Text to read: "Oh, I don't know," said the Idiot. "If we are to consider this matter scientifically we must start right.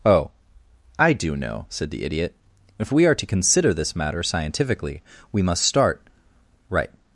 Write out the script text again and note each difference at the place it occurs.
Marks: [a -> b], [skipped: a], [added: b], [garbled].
"Oh, I [don't -> do] know," said the Idiot. "If we are to consider this matter scientifically we must start right.